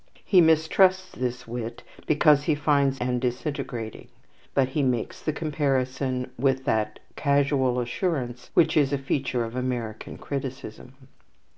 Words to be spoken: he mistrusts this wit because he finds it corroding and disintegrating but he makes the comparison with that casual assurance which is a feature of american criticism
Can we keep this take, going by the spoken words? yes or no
no